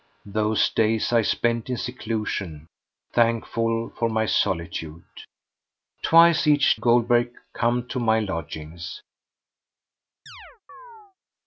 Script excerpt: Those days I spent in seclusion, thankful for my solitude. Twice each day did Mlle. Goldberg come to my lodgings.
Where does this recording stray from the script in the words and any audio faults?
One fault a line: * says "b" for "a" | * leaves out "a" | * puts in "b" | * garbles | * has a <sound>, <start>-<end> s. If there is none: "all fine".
* leaves out "day did Mlle"
* has a chirp, 10.3-11.2 s